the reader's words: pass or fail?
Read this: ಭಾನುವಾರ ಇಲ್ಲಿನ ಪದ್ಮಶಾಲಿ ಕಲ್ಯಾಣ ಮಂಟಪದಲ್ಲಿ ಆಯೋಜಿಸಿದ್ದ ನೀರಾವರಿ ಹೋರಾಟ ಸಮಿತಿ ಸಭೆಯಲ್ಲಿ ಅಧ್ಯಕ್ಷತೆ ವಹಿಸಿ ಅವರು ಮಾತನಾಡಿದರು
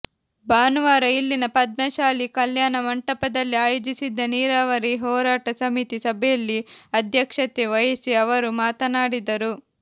pass